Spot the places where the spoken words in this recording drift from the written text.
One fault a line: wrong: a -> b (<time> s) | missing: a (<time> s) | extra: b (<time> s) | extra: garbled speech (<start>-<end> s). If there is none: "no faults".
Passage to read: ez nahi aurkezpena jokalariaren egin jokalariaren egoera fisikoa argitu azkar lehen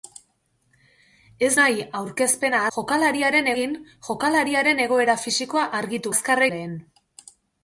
no faults